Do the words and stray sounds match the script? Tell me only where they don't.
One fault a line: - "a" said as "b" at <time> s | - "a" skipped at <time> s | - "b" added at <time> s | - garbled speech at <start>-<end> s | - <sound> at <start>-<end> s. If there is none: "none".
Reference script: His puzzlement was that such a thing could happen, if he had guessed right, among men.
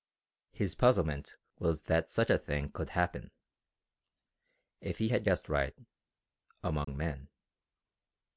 - dropout at 6.8-6.9 s